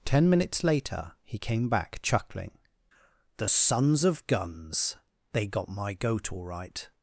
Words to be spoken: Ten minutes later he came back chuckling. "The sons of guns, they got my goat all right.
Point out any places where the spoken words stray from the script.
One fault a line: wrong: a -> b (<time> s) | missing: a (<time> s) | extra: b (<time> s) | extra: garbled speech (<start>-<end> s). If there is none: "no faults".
no faults